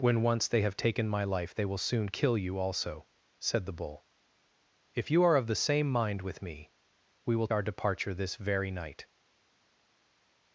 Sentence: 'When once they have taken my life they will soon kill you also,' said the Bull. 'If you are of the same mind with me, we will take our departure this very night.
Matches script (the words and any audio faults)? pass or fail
fail